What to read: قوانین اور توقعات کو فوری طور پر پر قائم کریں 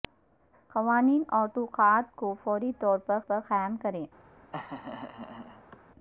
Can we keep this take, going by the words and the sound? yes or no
no